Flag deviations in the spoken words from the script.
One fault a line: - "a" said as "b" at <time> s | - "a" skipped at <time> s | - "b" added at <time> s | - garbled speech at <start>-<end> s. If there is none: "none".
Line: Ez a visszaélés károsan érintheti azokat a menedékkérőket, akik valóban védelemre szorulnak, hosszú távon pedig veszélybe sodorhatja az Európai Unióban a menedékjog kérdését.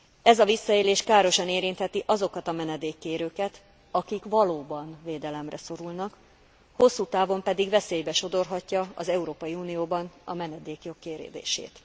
none